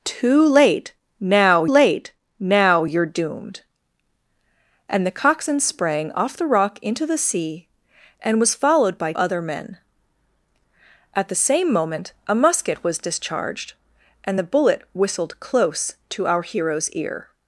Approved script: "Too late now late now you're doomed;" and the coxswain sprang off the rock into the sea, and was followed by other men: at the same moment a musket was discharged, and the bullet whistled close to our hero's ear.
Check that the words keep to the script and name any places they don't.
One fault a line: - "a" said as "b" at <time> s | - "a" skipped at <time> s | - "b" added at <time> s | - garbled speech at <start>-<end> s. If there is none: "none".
none